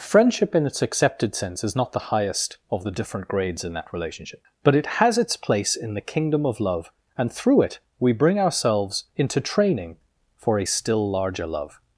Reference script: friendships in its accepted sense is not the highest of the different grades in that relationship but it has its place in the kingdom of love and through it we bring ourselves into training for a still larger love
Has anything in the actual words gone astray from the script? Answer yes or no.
yes